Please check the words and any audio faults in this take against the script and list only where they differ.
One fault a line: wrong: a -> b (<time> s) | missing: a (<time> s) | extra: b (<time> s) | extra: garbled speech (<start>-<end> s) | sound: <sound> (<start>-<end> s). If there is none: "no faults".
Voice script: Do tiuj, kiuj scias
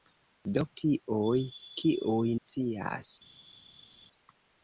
no faults